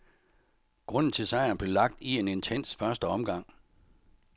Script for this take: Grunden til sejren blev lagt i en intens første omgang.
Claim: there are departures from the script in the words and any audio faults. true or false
false